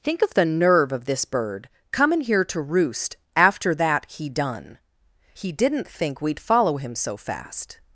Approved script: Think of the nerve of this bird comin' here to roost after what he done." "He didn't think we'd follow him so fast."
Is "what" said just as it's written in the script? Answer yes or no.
no